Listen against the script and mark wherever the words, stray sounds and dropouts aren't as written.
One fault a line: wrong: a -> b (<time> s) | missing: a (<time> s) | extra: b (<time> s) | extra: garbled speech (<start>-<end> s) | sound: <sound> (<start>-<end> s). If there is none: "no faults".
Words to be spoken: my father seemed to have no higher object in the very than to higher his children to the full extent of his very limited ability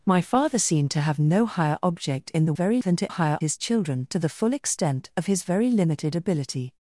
no faults